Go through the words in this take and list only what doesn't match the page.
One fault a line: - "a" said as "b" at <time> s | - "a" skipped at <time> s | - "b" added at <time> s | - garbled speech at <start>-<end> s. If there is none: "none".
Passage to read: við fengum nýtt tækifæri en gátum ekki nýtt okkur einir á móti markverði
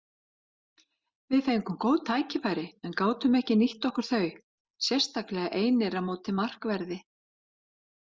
- "nýtt" said as "góð" at 1.8 s
- "þau sérstaklega" added at 4.1 s